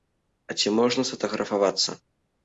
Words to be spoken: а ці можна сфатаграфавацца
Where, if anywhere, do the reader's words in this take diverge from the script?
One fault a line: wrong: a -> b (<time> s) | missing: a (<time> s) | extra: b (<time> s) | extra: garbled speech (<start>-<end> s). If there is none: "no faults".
no faults